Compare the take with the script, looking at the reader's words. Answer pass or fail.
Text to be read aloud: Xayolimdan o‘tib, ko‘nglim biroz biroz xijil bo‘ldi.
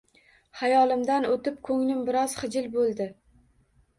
fail